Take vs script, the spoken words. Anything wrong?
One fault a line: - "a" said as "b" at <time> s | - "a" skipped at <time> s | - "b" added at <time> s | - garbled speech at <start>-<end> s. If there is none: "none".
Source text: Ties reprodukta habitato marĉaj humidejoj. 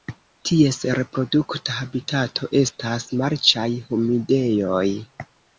- "estas" added at 2.6 s